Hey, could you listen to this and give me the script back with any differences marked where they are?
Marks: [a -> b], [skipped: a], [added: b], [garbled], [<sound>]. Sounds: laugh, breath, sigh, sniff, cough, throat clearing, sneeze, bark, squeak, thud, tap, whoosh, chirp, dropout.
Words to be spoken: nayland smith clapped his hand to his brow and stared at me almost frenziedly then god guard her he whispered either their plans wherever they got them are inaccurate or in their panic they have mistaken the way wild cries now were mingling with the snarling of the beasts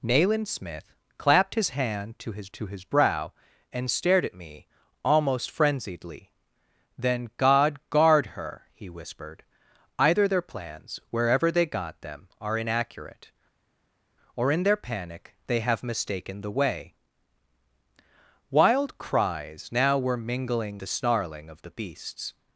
nayland smith clapped his hand to his [added: to his] brow and stared at me almost frenziedly then god guard her he whispered either their plans wherever they got them are inaccurate or in their panic they have mistaken the way wild cries now were mingling [skipped: with] the snarling of the beasts